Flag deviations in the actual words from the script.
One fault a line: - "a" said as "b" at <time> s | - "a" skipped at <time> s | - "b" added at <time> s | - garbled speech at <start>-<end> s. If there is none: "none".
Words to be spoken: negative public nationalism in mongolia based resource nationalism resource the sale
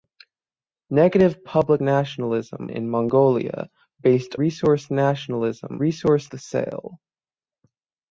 none